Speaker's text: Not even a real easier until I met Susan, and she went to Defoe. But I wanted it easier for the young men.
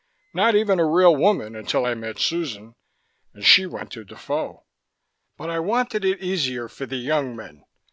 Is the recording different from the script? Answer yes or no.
yes